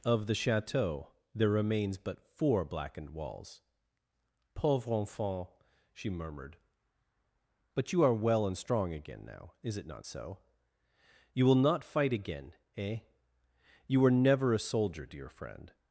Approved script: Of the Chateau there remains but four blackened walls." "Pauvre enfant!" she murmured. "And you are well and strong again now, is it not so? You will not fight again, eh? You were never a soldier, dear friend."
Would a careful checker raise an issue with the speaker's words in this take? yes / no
yes